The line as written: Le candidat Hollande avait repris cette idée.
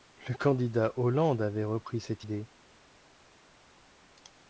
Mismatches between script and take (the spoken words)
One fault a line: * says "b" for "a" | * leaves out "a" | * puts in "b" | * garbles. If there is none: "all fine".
all fine